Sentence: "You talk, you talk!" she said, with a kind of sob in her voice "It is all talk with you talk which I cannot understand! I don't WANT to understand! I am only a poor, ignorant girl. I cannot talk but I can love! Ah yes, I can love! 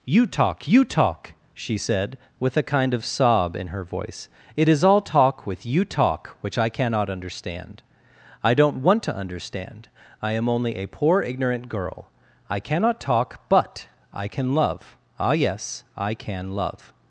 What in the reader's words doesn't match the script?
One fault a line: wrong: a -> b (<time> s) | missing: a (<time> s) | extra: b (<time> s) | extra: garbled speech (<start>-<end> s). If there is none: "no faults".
no faults